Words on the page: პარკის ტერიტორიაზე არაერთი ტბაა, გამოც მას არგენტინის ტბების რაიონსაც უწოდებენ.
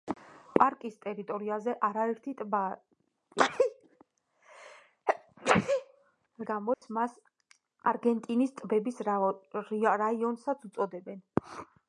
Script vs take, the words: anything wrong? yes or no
no